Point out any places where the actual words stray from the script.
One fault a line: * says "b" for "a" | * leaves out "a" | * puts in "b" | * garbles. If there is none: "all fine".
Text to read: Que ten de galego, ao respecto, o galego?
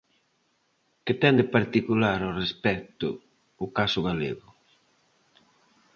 * says "particular" for "galego"
* puts in "caso"